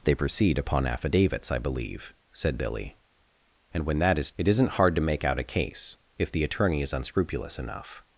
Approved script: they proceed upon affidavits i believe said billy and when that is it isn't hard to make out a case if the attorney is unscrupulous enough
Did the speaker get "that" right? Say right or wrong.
right